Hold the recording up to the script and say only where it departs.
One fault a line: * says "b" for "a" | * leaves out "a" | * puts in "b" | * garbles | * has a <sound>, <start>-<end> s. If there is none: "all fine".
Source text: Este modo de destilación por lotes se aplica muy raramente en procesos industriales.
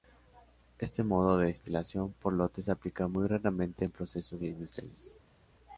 all fine